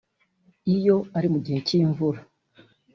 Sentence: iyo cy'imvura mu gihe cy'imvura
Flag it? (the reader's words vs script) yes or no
yes